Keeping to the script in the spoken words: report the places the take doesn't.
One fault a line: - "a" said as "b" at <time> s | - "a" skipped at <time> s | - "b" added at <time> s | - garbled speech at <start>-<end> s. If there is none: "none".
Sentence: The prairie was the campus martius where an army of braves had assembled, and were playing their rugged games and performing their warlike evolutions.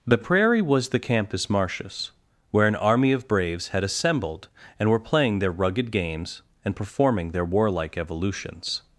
none